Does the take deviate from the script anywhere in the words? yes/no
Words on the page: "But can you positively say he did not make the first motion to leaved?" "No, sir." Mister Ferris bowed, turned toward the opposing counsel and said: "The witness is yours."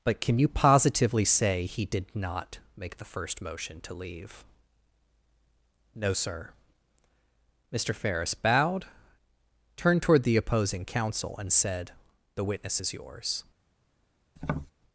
yes